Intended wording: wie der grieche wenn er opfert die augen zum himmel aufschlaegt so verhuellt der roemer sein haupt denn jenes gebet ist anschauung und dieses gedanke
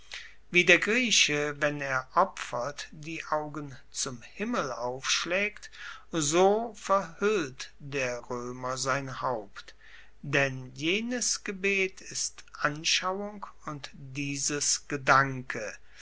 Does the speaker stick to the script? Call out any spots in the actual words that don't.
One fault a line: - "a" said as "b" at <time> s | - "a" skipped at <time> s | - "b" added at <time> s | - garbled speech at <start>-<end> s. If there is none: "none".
none